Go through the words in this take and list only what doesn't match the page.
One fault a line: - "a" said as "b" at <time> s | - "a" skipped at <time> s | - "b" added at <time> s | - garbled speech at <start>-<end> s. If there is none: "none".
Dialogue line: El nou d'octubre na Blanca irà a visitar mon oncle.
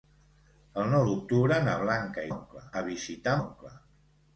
- "irà" said as "oncle" at 2.3 s
- "mon" skipped at 3.4 s